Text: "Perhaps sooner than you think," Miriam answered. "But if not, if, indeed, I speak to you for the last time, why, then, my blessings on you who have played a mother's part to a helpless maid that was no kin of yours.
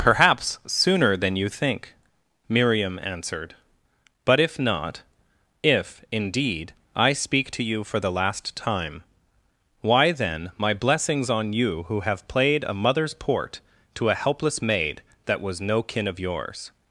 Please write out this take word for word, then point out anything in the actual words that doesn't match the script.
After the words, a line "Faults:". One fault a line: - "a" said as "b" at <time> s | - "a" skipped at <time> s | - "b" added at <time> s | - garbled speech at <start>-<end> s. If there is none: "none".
"Perhaps sooner than you think," Miriam answered. "But if not, if, indeed, I speak to you for the last time, why, then, my blessings on you who have played a mother's port to a helpless maid that was no kin of yours.
Faults:
- "part" said as "port" at 13.1 s